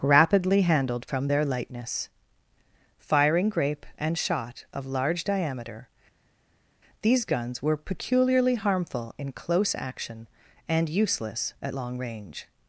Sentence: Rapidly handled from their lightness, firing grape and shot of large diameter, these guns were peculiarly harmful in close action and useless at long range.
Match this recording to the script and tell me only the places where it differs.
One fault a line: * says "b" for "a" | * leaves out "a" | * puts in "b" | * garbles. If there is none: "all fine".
all fine